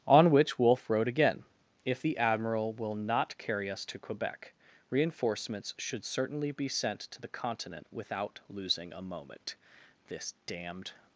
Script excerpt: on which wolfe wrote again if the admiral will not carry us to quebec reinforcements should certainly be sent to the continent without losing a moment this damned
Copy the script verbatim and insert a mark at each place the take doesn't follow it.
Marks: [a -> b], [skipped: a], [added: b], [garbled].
on which wolfe wrote again if the admiral will not carry us to quebec reinforcements should certainly be sent to the continent without losing a moment this damned